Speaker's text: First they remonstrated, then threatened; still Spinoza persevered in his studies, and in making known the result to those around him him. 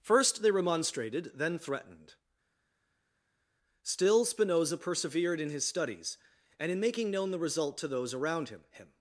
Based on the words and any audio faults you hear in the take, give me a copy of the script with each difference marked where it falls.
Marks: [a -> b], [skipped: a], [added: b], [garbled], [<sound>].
First they remonstrated, then threatened; still Spinoza persevered in his studies, and in making known the result to those around him him.